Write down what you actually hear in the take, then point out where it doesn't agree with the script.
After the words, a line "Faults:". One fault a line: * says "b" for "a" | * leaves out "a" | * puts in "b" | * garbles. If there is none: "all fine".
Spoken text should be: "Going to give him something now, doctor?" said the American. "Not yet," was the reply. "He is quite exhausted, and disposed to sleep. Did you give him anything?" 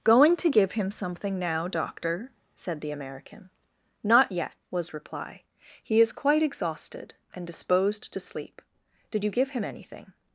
"Going to give him something now, doctor?" said the American. "Not yet," was reply. "He is quite exhausted, and disposed to sleep. Did you give him anything?"
Faults:
* leaves out "the"